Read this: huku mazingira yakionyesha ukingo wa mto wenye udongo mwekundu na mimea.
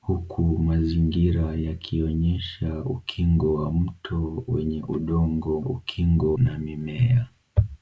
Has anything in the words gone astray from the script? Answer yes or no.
yes